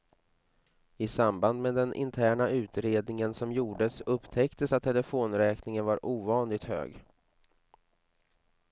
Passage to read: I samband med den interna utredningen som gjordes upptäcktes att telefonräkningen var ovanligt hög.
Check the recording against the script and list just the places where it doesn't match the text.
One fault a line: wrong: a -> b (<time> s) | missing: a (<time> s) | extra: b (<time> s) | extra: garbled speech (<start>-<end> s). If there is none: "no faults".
no faults